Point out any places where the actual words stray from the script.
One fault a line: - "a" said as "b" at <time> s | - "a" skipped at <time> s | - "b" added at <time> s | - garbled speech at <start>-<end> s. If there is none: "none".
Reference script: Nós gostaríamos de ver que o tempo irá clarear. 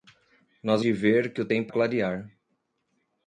- "gostaríamos" skipped at 0.8 s
- "irá" skipped at 1.7 s